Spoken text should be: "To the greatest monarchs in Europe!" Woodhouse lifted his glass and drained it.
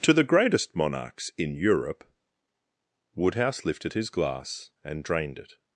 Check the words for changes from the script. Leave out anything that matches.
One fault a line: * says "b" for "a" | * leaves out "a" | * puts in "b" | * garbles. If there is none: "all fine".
all fine